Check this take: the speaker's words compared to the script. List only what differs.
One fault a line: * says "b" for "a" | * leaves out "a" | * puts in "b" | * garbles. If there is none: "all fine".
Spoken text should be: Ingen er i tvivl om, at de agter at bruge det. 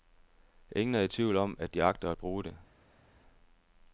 all fine